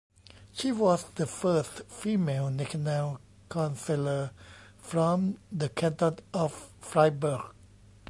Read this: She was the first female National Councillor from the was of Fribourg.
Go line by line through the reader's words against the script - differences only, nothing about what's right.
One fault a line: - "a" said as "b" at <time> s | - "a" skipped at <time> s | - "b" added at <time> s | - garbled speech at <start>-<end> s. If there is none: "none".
- "was" said as "canton" at 5.7 s